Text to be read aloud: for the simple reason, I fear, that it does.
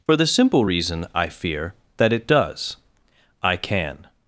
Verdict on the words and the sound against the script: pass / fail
fail